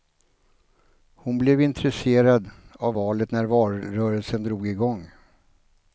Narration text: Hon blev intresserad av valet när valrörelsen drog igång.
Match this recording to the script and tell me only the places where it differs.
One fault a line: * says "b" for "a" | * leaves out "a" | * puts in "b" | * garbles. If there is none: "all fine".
all fine